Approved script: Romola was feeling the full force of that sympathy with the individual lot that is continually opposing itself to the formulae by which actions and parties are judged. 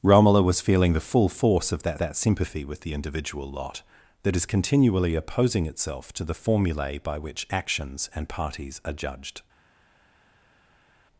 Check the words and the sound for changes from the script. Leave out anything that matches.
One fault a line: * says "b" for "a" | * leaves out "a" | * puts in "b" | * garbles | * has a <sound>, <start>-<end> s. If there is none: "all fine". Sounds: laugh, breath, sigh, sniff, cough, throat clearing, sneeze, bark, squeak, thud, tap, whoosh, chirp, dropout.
* puts in "that"